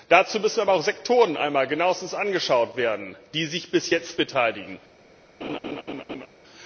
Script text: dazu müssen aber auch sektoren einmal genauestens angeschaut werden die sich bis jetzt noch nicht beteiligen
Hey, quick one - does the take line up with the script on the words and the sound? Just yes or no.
no